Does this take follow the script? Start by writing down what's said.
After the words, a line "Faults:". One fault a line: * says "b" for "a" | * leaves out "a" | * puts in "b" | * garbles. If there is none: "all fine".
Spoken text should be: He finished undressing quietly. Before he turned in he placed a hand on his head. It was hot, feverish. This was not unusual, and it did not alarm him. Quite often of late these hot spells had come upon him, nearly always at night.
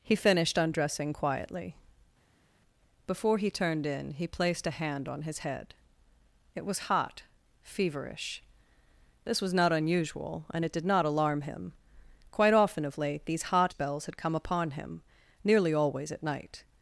He finished undressing quietly. Before he turned in he placed a hand on his head. It was hot, feverish. This was not unusual, and it did not alarm him. Quite often of late these hot spells had come upon him, nearly always at night.
Faults:
all fine